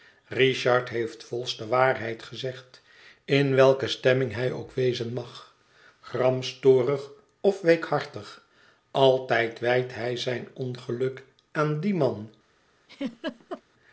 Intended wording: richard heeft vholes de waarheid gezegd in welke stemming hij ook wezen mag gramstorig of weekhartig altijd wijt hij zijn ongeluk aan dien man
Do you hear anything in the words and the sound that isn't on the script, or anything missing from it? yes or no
yes